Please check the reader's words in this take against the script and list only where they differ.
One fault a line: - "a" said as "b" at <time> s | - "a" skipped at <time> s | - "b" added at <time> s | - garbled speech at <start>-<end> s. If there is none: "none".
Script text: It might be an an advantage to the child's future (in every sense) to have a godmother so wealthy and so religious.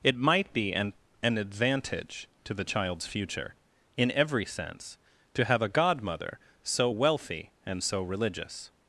none